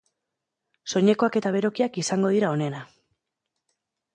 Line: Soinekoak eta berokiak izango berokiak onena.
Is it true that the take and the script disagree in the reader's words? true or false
true